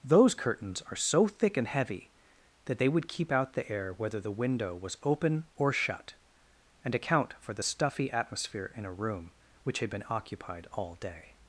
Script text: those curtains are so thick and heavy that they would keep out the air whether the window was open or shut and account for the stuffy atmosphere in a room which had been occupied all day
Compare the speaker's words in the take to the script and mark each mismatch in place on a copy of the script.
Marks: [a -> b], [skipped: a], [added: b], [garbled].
those curtains are so thick and heavy that they would keep out the air whether the window was open or shut and account for the stuffy atmosphere in a room which had been occupied all day